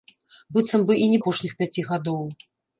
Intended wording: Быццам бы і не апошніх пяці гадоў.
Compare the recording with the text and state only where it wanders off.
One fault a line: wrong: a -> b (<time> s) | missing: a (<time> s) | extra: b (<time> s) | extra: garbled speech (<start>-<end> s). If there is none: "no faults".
no faults